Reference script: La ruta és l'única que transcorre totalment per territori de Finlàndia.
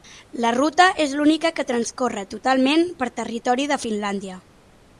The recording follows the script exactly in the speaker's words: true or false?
true